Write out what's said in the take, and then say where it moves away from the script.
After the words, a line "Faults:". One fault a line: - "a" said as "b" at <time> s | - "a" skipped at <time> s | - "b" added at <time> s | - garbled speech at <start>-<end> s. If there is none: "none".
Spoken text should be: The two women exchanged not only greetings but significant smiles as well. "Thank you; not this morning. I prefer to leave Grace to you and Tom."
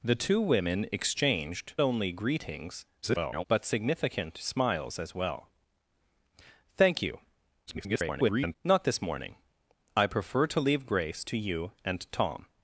The two women exchanged only greetings [garbled] but significant smiles as well. "Thank you; [garbled] not this morning. I prefer to leave Grace to you and Tom."
Faults:
- "not" skipped at 1.8 s
- garbled speech at 3.0-3.4 s
- garbled speech at 7.7-8.6 s